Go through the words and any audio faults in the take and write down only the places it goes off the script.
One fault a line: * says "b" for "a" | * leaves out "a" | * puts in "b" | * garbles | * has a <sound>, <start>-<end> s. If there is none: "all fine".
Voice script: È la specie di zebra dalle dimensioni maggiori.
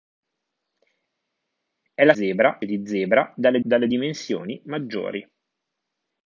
* says "zebra" for "specie"
* puts in "dalle"